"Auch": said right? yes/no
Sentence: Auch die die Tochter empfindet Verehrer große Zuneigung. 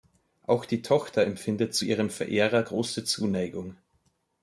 yes